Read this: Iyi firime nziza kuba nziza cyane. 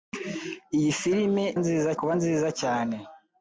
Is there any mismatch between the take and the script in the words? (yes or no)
no